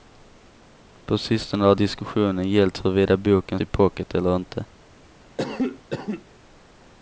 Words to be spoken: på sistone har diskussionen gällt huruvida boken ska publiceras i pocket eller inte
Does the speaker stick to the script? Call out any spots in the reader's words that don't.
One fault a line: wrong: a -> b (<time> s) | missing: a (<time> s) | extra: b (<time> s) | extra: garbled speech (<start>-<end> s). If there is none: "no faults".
missing: ska publiceras (3.6 s)